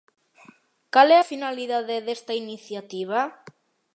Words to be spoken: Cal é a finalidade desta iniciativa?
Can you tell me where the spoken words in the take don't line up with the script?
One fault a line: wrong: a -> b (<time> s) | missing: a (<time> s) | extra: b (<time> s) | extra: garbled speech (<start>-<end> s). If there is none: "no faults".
no faults